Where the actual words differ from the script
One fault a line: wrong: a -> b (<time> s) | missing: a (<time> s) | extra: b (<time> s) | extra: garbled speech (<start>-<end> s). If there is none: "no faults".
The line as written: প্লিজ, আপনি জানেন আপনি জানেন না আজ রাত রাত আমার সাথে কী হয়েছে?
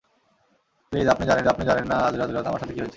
no faults